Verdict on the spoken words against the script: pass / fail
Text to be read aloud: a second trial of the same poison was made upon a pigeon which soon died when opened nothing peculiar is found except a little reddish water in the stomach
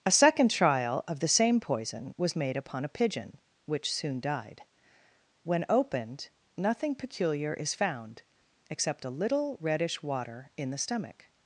pass